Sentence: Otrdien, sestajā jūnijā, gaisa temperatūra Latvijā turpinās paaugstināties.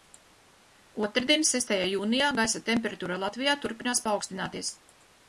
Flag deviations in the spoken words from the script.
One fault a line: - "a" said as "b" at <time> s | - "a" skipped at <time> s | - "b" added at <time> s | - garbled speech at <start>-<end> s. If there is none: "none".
none